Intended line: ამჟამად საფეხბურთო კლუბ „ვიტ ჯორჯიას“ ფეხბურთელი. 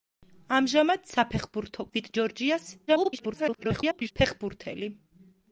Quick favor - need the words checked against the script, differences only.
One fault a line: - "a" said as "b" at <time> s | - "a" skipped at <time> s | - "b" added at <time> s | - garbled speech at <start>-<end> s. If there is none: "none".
- "კლუბ" skipped at 1.9 s
- garbled speech at 2.9-4.1 s